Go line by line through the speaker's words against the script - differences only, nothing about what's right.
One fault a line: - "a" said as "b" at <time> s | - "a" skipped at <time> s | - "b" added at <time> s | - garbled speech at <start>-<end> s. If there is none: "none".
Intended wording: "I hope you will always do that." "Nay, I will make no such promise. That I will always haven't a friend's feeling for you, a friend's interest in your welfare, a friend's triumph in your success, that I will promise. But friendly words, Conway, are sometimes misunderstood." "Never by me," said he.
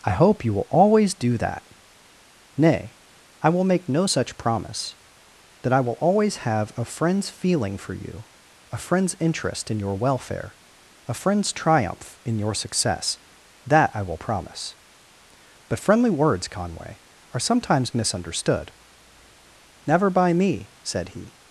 - "haven't" said as "have" at 6.5 s